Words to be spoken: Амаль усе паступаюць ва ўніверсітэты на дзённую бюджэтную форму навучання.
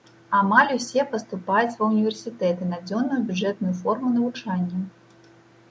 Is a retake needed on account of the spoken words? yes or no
no